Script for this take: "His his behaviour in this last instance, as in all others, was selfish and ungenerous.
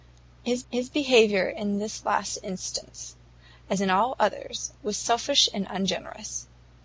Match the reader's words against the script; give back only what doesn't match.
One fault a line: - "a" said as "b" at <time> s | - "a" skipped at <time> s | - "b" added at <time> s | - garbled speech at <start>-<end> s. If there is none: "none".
none